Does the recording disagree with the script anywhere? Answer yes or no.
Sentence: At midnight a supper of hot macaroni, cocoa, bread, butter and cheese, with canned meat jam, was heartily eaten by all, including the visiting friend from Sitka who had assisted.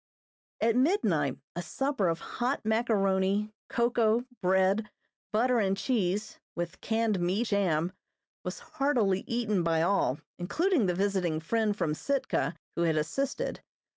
no